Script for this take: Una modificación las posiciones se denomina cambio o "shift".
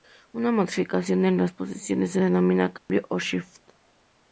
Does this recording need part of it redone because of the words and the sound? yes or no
yes